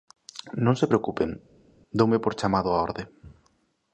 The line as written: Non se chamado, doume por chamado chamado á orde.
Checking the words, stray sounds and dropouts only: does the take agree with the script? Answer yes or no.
no